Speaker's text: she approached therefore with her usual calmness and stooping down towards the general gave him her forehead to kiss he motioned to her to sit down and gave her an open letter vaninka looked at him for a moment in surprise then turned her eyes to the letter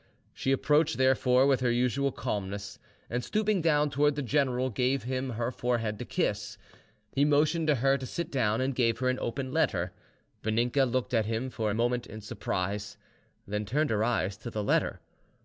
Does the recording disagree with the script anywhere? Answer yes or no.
no